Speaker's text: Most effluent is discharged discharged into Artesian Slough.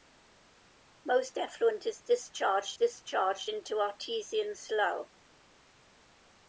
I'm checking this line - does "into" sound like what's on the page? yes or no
yes